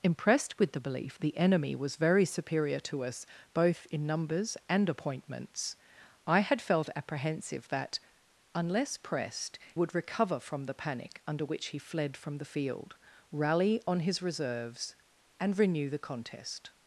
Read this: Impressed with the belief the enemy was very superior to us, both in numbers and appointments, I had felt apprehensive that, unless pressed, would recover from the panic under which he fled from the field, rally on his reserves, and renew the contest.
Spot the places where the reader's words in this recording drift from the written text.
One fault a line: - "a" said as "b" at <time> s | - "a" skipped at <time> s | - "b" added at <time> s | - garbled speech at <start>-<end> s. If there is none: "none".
none